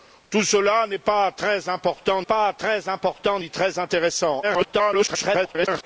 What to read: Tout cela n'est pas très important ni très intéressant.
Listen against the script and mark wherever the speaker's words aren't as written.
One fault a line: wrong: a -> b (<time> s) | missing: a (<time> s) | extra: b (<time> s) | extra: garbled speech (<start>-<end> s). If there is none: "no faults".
extra: pas très important (2.2 s)
extra: garbled speech (4.4-5.8 s)